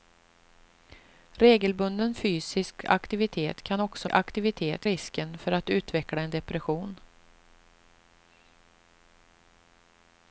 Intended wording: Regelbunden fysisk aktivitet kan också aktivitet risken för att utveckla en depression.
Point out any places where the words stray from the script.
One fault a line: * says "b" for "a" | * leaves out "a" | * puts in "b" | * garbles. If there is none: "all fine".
all fine